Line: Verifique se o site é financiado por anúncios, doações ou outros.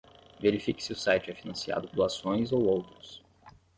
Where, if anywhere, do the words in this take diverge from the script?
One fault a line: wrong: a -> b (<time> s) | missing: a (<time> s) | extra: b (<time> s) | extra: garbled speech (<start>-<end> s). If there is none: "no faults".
missing: por anúncios (1.9 s)